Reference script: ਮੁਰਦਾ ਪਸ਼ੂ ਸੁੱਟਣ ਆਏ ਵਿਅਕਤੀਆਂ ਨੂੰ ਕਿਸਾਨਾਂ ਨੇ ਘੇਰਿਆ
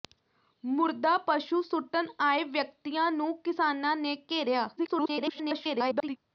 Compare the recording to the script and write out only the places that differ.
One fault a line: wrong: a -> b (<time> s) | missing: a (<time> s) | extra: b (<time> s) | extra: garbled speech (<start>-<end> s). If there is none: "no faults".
extra: garbled speech (4.8-6.2 s)